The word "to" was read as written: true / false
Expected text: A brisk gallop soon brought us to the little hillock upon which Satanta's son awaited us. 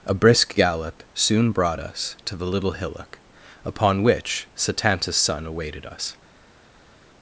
true